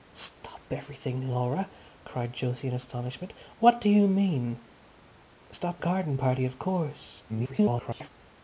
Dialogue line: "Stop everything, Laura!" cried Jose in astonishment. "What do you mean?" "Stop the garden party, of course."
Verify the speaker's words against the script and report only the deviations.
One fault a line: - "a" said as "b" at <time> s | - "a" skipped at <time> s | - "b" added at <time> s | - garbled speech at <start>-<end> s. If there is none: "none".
- "the" skipped at 5.8 s
- garbled speech at 7.3-8.1 s